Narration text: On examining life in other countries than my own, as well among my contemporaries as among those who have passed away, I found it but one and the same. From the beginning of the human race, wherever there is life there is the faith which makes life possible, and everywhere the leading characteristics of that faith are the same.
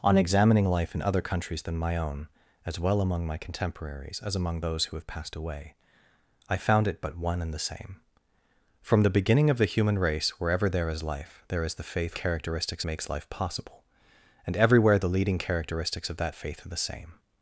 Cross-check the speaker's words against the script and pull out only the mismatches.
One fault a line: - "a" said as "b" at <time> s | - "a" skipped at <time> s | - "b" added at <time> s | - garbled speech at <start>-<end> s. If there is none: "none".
- "which" said as "characteristics" at 12.1 s